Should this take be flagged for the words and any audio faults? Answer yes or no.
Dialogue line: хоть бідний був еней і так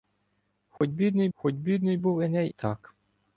yes